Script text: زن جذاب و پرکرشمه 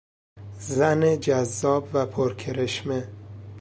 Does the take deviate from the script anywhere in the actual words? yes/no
no